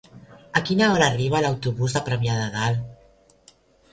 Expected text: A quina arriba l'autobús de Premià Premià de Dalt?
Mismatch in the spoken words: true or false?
true